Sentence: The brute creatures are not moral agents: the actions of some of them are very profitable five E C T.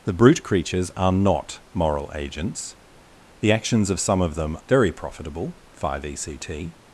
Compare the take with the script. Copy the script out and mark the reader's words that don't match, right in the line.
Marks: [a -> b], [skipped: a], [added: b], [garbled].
The brute creatures are not moral agents: the actions of some of them [skipped: are] very profitable five E C T.